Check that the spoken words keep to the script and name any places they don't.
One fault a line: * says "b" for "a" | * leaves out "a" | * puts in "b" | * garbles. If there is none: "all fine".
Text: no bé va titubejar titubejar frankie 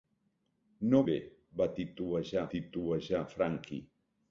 all fine